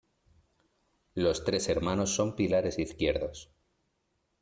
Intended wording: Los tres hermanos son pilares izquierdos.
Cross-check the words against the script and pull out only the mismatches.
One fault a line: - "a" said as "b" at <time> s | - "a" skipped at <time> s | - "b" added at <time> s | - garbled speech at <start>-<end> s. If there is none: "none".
none